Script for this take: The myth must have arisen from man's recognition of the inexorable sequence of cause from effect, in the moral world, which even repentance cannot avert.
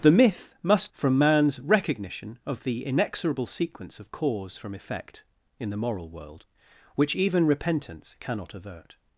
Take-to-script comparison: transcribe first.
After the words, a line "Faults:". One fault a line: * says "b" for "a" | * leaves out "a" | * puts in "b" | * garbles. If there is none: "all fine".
The myth must from man's recognition of the inexorable sequence of cause from effect, in the moral world, which even repentance cannot avert.
Faults:
* leaves out "have arisen"